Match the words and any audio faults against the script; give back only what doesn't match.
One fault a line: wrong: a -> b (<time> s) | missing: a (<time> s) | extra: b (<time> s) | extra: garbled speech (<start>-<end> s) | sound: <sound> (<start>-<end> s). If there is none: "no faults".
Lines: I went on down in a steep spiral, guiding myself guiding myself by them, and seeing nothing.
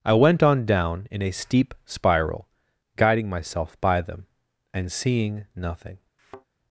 missing: guiding myself (3.8 s)
sound: thud (6.2-6.5 s)